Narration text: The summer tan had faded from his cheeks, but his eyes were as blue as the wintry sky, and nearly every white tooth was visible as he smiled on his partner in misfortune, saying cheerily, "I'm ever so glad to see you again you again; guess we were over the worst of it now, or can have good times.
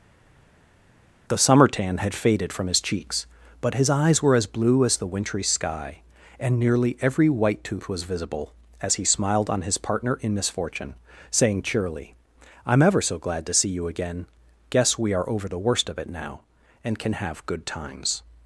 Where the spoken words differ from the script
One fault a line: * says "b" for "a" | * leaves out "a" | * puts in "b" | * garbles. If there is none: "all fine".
* leaves out "you again"
* says "are" for "were"
* says "and" for "or"